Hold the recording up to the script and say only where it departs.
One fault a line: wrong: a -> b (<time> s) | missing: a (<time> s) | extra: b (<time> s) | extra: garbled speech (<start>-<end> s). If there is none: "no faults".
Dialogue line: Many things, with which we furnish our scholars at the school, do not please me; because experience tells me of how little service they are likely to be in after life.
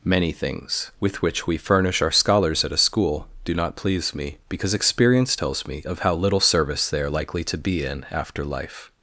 wrong: the -> a (2.7 s)